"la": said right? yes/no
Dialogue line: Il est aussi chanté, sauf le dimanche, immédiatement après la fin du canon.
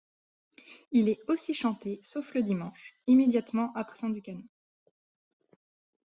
no